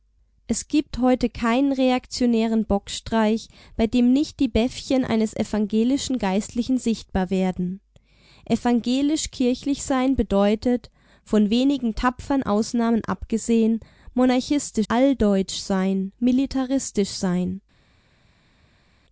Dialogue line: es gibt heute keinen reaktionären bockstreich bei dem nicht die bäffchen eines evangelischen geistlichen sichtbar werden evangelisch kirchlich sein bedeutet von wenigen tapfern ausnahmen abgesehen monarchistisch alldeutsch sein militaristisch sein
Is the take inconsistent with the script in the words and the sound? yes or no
no